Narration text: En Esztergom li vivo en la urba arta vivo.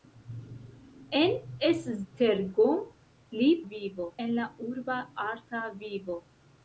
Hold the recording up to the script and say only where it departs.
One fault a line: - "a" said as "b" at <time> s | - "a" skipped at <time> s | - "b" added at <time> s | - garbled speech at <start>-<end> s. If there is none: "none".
none